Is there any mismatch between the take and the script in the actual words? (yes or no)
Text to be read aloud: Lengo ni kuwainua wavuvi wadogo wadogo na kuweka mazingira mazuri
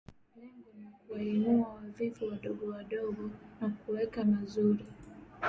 yes